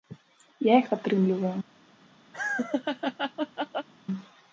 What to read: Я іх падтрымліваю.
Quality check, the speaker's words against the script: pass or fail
pass